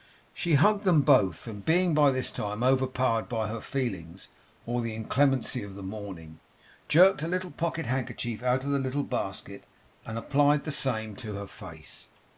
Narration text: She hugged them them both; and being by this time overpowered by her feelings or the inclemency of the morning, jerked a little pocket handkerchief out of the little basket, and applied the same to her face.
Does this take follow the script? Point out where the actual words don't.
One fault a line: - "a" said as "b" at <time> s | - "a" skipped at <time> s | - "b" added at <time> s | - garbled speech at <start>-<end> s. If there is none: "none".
- "them" skipped at 1.0 s